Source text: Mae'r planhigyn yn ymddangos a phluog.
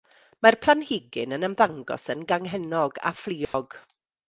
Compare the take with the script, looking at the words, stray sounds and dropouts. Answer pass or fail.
fail